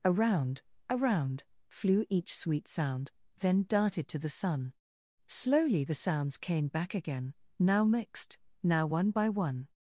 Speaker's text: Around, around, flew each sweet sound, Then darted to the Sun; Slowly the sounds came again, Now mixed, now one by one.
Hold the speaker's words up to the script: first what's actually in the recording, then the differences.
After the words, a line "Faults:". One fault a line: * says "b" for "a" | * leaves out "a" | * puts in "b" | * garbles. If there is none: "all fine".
Around, around, flew each sweet sound, Then darted to the Sun; Slowly the sounds came back again, Now mixed, now one by one.
Faults:
* puts in "back"